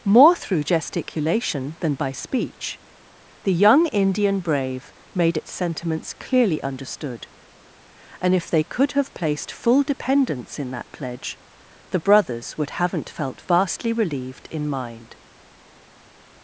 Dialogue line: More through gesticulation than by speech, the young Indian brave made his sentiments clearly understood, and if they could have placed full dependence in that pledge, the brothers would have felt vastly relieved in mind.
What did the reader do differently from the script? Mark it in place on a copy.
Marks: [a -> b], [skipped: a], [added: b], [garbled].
More through gesticulation than by speech, the young Indian brave made [his -> its] sentiments clearly understood, and if they could have placed full dependence in that pledge, the brothers would [have -> haven't] felt vastly relieved in mind.